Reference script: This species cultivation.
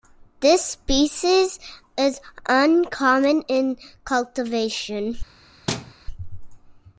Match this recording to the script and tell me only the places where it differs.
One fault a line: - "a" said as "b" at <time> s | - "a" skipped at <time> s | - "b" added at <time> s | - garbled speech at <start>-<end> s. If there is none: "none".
- "is uncommon in" added at 1.9 s